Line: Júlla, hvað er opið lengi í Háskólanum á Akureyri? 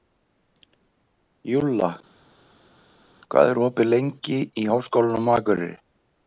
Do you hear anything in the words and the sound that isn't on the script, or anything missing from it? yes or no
no